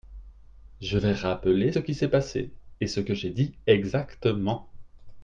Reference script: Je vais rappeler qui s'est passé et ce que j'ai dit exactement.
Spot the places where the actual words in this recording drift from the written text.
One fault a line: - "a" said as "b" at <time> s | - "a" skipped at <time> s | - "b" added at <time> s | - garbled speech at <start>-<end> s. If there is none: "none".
none